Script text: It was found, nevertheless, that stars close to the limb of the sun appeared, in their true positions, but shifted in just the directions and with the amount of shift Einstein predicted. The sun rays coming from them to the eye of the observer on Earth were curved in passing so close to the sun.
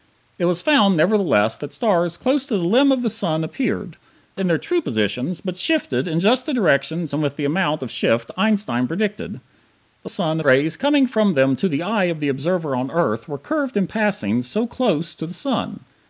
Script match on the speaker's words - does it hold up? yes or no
yes